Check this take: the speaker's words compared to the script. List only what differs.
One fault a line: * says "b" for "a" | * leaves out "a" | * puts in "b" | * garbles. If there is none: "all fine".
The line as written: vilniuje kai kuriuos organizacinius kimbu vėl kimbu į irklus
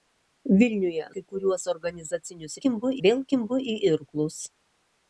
all fine